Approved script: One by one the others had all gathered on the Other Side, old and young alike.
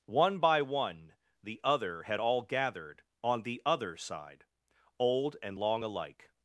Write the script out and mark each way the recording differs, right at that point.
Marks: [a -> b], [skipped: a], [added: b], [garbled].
One by one the [others -> other] had all gathered on the Other Side, old and [young -> long] alike.